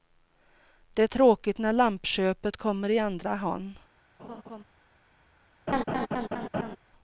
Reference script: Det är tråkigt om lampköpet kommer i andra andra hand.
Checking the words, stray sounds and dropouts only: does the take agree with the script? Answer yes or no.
no